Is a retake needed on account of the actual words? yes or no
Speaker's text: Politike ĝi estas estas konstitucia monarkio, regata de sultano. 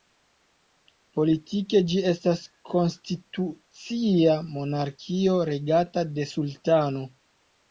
yes